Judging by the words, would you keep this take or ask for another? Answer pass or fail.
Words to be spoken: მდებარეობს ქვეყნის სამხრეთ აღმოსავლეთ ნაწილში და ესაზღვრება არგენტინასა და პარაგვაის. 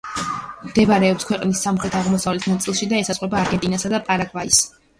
pass